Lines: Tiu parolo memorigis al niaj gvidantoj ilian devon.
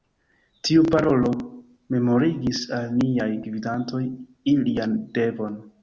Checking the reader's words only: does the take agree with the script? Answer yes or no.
yes